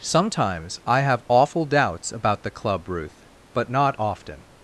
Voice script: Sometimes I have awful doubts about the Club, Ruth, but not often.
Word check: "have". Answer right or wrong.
right